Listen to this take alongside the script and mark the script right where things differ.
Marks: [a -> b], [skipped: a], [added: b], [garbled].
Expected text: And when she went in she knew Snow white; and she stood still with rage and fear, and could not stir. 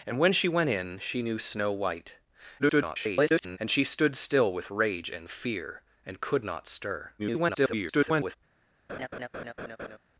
And when she went in she knew Snow white; [garbled] and she stood still with rage and fear, and could not stir. [garbled]